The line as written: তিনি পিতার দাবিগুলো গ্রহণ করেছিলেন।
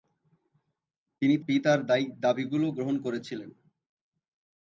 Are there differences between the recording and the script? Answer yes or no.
no